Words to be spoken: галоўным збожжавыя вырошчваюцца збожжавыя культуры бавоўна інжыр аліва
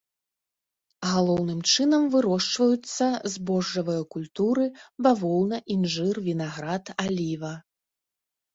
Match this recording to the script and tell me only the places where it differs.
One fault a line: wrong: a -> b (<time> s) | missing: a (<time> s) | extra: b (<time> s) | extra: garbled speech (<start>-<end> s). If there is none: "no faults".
wrong: збожжавыя -> чынам (1.7 s)
extra: вінаград (6.3 s)